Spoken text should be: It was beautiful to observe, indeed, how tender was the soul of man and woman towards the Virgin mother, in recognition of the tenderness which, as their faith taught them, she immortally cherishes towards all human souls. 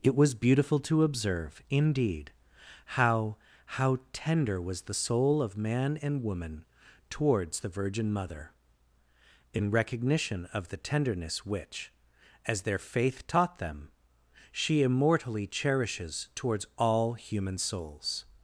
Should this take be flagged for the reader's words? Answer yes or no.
yes